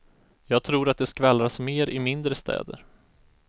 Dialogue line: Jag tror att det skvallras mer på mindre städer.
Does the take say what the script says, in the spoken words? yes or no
no